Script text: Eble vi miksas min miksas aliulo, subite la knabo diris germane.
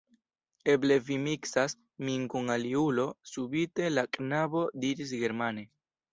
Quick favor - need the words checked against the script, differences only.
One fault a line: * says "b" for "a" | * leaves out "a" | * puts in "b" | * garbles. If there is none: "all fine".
* says "kun" for "miksas"